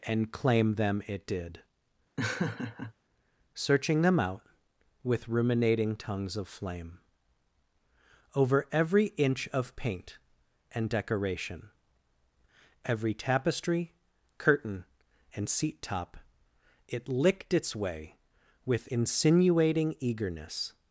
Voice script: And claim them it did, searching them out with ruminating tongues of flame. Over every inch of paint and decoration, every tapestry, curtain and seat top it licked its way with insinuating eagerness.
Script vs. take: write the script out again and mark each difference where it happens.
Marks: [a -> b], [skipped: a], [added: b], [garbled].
And claim them it did, searching them out with ruminating tongues of flame. Over every inch of paint and decoration, every tapestry, curtain and seat top it licked its way with insinuating eagerness.